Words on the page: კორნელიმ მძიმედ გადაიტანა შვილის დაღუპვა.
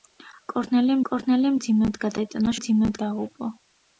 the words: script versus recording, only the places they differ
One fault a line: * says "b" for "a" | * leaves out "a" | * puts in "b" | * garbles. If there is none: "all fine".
* puts in "კორნელიმ"
* says "მძიმედ" for "შვილის"